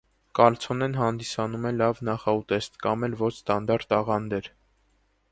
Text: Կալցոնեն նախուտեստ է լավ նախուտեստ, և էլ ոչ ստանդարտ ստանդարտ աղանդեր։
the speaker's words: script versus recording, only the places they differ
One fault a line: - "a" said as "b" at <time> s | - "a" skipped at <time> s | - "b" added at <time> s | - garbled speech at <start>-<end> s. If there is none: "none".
- "նախուտեստ" said as "հանդիսանում" at 1.0 s
- "և" said as "կամ" at 2.9 s
- "ստանդարտ" skipped at 4.0 s